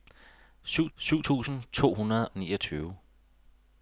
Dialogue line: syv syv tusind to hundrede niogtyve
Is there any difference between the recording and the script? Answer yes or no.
no